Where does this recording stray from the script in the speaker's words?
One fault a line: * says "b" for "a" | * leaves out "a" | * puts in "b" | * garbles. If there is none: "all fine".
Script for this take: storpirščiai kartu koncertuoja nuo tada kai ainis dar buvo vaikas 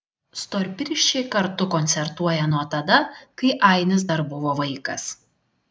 all fine